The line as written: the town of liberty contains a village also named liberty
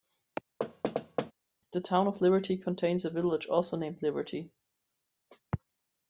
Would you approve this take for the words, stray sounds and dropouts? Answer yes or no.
no